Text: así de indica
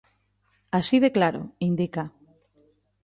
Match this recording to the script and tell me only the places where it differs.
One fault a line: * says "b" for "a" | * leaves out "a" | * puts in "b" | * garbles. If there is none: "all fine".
* puts in "claro"